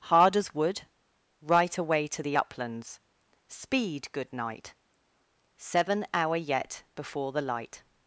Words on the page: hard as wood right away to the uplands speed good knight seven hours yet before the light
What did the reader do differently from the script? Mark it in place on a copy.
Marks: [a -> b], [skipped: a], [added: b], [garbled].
hard as wood right away to the uplands speed good knight seven [hours -> hour] yet before the light